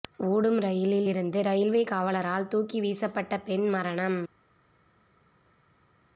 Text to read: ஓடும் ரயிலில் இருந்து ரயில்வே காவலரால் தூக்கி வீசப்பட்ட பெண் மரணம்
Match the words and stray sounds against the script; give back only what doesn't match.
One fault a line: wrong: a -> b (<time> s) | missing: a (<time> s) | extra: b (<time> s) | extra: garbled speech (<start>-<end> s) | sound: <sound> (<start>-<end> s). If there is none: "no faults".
no faults